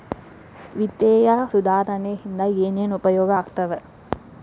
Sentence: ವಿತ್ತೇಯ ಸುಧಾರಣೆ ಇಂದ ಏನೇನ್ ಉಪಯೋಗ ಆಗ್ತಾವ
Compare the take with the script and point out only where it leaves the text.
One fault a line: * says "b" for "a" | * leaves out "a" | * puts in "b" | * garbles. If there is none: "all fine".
all fine